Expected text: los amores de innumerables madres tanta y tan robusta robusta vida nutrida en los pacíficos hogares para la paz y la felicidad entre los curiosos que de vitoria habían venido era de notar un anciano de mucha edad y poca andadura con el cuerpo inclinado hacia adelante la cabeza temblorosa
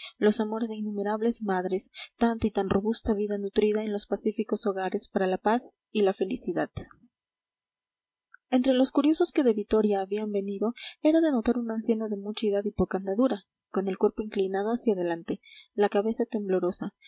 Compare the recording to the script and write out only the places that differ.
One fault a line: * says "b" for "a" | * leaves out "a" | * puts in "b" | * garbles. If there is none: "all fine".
* leaves out "robusta"